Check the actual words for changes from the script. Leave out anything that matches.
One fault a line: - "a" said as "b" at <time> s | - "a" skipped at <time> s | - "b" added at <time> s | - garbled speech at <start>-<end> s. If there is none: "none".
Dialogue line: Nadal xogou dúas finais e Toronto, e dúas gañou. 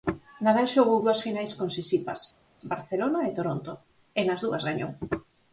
- "con Sisipas Barcelona" added at 1.6 s
- "nas" added at 4.2 s